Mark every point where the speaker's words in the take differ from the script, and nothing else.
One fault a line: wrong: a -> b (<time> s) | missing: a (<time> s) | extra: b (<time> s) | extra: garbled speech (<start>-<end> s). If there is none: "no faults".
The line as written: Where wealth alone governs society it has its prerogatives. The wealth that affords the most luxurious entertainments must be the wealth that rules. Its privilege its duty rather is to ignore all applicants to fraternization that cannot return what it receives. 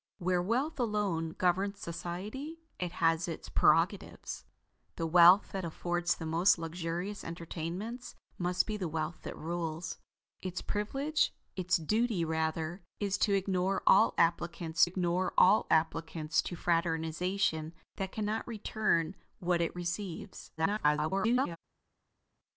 extra: ignore all applicants (14.8 s)
extra: garbled speech (20.6-21.6 s)